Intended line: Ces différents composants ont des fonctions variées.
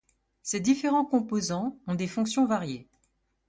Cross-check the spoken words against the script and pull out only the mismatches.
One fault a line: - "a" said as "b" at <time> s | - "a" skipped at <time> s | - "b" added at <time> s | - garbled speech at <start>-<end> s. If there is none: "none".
none